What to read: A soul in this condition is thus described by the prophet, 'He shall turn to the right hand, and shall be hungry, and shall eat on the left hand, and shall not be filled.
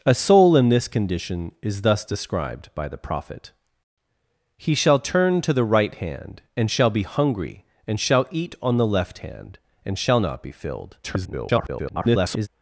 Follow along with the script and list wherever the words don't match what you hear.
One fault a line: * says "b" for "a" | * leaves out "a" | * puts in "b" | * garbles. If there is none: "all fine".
* garbles